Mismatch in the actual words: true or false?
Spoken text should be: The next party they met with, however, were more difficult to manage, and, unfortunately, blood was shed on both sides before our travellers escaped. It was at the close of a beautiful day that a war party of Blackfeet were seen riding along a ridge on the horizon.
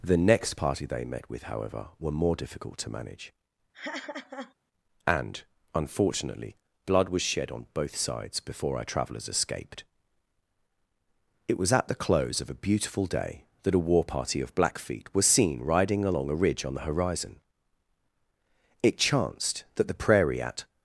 true